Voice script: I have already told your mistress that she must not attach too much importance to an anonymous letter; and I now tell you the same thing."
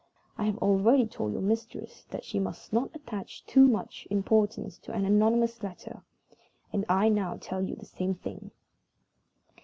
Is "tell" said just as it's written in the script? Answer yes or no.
yes